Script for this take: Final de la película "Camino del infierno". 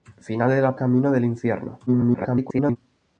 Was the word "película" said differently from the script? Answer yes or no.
yes